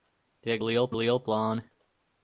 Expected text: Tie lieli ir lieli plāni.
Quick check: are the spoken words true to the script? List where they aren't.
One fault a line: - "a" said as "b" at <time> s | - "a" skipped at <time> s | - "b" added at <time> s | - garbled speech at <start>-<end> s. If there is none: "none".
none